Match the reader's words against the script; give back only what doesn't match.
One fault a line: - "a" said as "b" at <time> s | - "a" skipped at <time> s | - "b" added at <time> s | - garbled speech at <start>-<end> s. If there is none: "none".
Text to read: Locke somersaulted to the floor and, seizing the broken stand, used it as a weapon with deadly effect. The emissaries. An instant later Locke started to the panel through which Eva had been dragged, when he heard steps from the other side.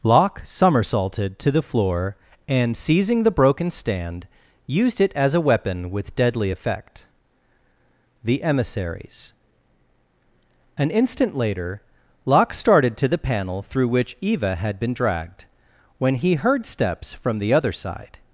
none